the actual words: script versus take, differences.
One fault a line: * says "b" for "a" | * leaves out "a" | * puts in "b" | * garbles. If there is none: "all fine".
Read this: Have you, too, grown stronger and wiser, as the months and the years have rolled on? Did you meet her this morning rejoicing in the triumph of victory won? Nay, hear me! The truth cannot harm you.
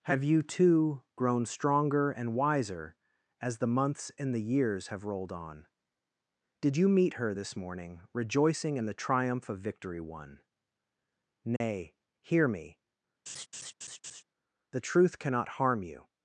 all fine